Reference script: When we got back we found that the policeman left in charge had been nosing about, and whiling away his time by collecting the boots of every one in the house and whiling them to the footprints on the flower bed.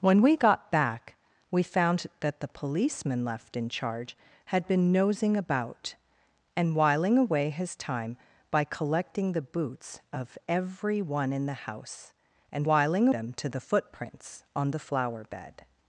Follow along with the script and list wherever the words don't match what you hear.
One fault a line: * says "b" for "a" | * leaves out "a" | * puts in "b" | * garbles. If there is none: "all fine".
all fine